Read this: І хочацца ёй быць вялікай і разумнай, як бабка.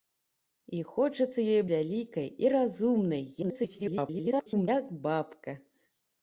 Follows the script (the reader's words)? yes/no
no